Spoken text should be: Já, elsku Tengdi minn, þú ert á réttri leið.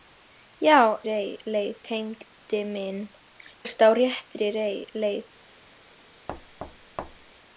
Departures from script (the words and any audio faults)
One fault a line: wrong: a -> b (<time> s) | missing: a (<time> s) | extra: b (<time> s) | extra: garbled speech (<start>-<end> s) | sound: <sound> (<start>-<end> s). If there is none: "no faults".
wrong: elsku -> leið (1.1 s)
missing: þú (3.0 s)
sound: thud (6.3-7.3 s)